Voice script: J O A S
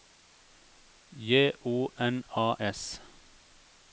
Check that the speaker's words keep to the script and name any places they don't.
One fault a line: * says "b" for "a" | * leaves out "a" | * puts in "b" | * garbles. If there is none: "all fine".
* puts in "N"